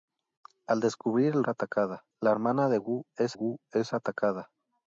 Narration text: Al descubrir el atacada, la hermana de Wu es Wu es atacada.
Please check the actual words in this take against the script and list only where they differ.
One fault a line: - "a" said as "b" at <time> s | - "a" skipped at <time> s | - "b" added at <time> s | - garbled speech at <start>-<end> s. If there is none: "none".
none